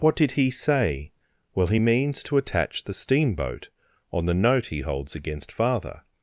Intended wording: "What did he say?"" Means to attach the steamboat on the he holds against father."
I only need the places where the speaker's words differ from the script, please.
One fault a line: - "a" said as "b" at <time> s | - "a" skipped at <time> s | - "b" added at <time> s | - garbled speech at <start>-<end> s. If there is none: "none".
- "Well he" added at 1.5 s
- "note" added at 4.3 s